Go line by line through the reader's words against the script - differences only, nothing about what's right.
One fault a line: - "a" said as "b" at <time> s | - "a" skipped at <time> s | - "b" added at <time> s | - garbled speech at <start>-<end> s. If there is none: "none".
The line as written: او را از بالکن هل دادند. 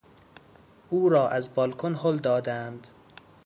none